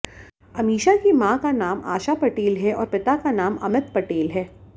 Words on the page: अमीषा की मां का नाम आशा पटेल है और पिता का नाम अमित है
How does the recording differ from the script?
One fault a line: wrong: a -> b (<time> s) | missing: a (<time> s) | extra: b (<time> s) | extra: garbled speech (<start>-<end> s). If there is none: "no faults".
extra: पटेल (3.9 s)